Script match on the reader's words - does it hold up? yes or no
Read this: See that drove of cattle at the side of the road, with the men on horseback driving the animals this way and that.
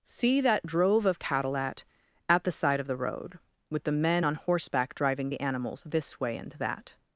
no